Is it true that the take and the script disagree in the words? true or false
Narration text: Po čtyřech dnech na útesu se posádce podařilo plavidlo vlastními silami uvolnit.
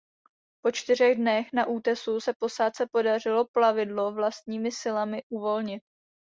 false